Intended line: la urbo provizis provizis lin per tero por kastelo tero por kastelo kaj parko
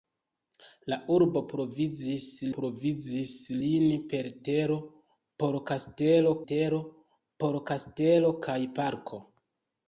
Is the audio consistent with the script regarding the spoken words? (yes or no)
yes